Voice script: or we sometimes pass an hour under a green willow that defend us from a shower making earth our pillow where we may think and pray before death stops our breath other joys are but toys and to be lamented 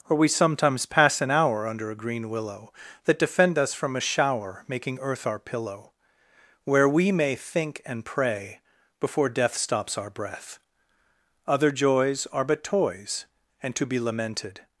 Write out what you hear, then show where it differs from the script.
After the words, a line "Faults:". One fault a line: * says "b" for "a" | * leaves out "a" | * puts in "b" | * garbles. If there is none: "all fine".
or we sometimes pass an hour under a green willow that defend us from a shower making earth our pillow where we may think and pray before death stops our breath other joys are but toys and to be lamented
Faults:
all fine